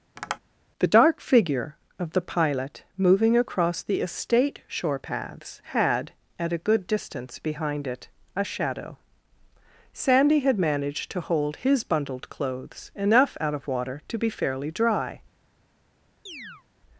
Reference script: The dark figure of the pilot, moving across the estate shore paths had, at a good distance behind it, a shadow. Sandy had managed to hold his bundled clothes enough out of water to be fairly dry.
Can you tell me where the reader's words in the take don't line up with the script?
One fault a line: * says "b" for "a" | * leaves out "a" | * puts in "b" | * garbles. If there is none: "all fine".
all fine